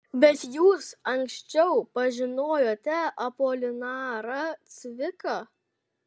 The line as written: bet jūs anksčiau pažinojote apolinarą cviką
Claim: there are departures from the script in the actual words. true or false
false